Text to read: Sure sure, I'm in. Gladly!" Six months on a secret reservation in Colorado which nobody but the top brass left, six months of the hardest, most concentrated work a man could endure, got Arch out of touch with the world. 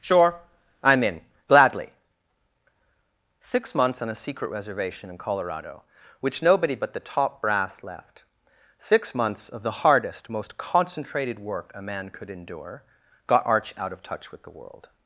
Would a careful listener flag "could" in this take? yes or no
no